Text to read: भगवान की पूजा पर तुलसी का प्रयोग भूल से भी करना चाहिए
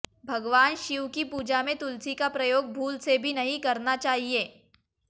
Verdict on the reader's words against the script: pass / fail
fail